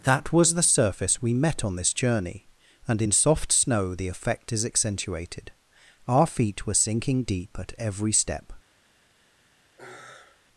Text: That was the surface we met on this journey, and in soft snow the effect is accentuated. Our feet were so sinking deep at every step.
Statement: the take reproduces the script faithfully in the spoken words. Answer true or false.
false